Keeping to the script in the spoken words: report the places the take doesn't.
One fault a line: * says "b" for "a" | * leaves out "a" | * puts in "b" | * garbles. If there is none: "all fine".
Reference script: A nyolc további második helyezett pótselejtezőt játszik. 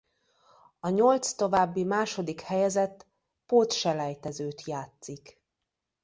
all fine